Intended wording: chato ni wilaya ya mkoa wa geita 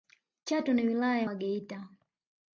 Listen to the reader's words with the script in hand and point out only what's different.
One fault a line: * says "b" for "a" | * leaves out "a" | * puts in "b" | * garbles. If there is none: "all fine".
* leaves out "mkoa"